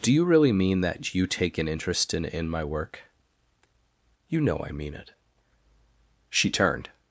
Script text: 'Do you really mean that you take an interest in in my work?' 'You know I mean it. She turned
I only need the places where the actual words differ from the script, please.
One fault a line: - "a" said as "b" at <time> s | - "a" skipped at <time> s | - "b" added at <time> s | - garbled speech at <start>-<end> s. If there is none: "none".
none